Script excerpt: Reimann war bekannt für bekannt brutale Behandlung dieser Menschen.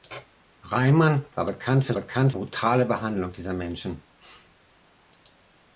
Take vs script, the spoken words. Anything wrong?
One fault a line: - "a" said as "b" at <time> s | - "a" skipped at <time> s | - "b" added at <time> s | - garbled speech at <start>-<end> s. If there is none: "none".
none